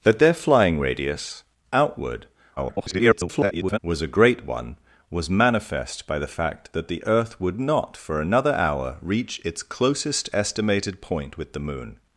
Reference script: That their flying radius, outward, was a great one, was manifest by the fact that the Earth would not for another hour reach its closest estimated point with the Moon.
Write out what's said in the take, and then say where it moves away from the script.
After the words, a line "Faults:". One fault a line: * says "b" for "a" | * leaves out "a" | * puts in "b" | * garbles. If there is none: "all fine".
That their flying radius, outward, [garbled] was a great one, was manifest by the fact that the Earth would not for another hour reach its closest estimated point with the Moon.
Faults:
* garbles